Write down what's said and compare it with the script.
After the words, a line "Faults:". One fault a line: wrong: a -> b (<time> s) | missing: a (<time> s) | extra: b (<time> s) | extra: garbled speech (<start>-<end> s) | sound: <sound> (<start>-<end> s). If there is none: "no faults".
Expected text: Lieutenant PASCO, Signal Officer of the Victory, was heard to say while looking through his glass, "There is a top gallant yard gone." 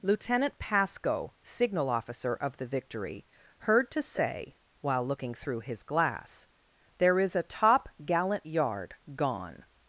Lieutenant PASCO, Signal Officer of the Victory, heard to say while looking through his glass, "There is a top gallant yard gone."
Faults:
missing: was (3.3 s)